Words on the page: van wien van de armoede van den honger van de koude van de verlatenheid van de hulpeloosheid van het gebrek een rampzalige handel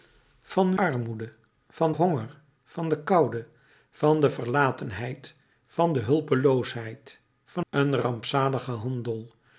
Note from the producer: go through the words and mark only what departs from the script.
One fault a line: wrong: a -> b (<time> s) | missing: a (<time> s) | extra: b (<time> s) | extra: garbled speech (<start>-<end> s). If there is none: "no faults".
missing: wien van de (0.8 s)
missing: den (1.9 s)
missing: het gebrek (7.6 s)